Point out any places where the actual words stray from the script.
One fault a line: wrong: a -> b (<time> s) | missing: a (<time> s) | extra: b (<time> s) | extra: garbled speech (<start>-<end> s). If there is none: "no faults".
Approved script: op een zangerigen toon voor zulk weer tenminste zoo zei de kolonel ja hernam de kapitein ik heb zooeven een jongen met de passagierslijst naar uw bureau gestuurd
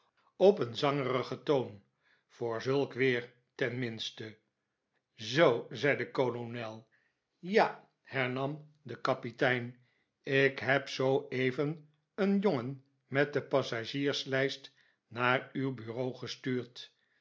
no faults